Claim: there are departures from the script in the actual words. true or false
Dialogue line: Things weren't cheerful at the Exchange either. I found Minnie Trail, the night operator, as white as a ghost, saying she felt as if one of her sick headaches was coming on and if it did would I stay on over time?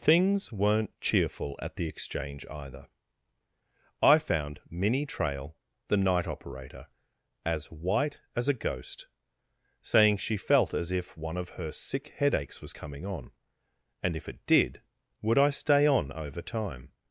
false